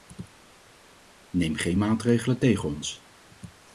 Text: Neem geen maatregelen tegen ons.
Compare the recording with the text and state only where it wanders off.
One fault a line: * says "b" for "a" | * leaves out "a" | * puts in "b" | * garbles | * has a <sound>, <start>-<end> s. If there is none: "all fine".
all fine